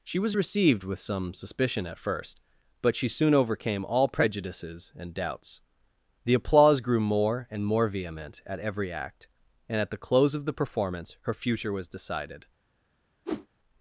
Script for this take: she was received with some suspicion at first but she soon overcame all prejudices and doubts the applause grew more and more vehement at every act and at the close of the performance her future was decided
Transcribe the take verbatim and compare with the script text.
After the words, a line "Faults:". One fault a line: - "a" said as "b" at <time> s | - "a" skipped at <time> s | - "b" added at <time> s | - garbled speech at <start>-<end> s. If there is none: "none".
she was received with some suspicion at first but she soon overcame all prejudices and doubts the applause grew more and more vehement at every act and at the close of the performance her future was decided
Faults:
none